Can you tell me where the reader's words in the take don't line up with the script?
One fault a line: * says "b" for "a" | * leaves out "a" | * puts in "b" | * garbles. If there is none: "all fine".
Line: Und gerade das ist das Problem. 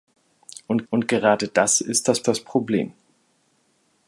* puts in "und"
* puts in "das"